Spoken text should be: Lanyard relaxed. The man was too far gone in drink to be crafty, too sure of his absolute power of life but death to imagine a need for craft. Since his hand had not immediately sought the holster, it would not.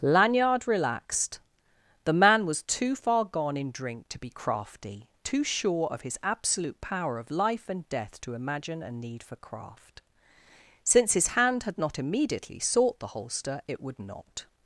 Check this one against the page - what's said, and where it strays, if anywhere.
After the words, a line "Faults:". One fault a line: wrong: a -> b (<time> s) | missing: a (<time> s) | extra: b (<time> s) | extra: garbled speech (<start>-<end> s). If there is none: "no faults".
Lanyard relaxed. The man was too far gone in drink to be crafty, too sure of his absolute power of life and death to imagine a need for craft. Since his hand had not immediately sought the holster, it would not.
Faults:
wrong: but -> and (7.7 s)